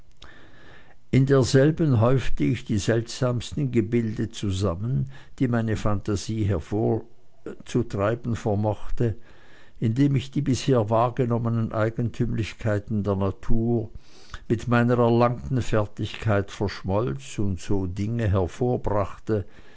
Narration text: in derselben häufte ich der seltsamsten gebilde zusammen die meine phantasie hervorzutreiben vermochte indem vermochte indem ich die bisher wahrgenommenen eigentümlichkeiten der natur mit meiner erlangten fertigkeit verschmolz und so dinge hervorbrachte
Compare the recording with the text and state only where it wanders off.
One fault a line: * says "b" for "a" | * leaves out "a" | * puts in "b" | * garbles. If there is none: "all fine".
* says "die" for "der"
* leaves out "vermochte indem"